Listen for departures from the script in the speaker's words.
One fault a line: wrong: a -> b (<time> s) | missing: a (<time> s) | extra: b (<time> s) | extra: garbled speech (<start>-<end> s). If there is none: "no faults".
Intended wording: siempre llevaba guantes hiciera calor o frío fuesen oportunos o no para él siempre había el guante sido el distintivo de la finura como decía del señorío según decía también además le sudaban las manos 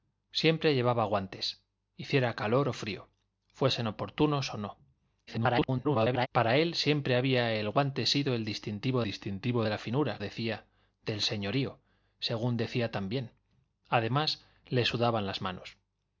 extra: garbled speech (5.3-6.3 s)
extra: distintivo (9.0 s)
missing: como (10.2 s)